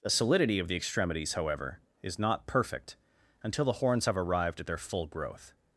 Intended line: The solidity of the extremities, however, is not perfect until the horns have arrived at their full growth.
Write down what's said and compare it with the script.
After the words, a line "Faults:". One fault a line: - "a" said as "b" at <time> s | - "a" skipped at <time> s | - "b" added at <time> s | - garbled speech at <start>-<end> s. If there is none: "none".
The solidity of the extremities, however, is not perfect until the horns have arrived at their full growth.
Faults:
none